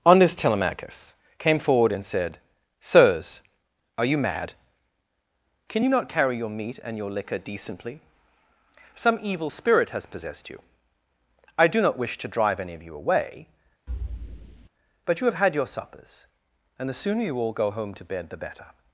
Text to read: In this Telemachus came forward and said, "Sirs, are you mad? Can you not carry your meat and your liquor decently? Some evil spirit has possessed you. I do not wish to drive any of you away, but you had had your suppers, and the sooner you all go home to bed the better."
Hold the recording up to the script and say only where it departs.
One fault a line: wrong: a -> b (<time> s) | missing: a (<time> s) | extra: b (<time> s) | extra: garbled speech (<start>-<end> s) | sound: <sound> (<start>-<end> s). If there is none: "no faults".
wrong: In -> On (0.0 s)
sound: thud (13.9-14.7 s)
wrong: had -> have (15.3 s)